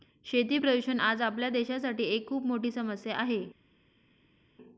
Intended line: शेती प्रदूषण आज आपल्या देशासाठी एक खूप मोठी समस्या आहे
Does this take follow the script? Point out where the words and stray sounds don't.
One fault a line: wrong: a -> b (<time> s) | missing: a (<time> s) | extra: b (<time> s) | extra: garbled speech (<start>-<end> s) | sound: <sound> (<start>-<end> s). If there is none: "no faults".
no faults